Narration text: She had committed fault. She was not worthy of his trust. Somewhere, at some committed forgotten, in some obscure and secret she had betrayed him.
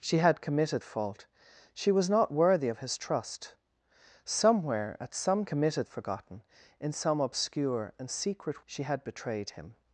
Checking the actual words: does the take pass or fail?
pass